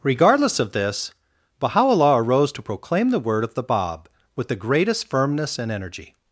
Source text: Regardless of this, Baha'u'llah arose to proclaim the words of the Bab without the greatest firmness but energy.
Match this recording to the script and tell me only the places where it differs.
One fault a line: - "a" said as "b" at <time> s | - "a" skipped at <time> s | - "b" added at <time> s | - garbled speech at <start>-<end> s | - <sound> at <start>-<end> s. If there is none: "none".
- "words" said as "word" at 3.2 s
- "without" said as "with" at 4.3 s
- "but" said as "and" at 5.6 s